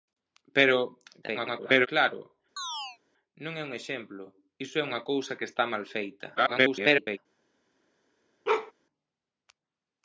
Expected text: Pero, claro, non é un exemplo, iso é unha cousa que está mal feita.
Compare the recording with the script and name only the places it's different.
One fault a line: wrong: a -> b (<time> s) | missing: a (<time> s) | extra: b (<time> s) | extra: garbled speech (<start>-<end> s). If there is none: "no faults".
extra: garbled speech (1.2-1.9 s)
extra: garbled speech (6.4-7.2 s)